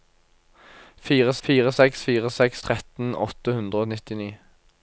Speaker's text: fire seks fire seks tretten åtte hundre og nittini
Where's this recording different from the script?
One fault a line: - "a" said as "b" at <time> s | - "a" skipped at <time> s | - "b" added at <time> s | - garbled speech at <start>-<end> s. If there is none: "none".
- "fire" added at 1.5 s